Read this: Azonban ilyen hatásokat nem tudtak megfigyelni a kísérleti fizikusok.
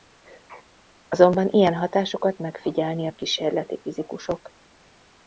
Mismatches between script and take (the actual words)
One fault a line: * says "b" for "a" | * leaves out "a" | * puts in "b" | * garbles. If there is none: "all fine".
* leaves out "nem tudtak"